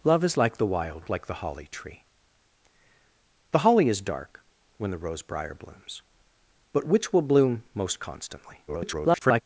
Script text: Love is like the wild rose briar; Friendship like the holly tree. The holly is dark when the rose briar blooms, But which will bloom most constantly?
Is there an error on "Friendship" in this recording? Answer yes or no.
yes